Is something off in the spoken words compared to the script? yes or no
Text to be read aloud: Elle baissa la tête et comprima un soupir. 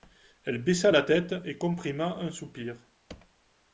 no